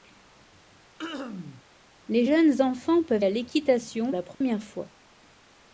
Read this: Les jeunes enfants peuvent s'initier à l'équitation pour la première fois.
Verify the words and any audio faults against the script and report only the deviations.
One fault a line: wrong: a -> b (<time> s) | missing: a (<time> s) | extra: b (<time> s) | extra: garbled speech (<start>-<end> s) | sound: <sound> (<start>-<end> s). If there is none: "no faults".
sound: throat clearing (1.0-1.6 s)
missing: s'initier (3.2 s)
missing: pour (4.1 s)
sound: dropout (4.3-4.4 s)